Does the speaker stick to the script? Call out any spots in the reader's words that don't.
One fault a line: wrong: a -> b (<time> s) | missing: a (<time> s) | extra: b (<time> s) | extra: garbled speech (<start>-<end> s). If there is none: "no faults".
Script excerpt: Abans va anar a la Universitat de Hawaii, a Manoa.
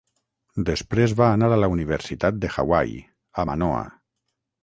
wrong: Abans -> Després (0.7 s)